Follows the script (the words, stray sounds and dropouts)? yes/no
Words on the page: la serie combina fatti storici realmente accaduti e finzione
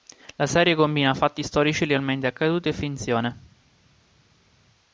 yes